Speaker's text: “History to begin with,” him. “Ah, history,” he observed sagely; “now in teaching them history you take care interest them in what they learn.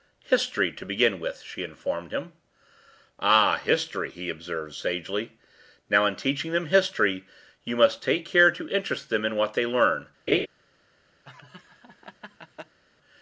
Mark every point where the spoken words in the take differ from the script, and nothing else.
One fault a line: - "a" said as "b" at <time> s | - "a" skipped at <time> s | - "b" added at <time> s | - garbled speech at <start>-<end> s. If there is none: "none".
- "she informed" added at 1.4 s
- "must" added at 7.7 s
- "to" added at 8.5 s